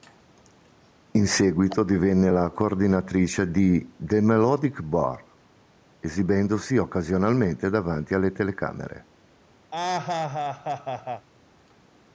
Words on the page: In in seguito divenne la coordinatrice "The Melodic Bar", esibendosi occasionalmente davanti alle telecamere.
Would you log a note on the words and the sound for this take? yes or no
yes